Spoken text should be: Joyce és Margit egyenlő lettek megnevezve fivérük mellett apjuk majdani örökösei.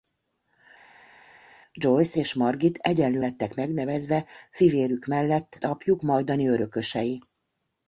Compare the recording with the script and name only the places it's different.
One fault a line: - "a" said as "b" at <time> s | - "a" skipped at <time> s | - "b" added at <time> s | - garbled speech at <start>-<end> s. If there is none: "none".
none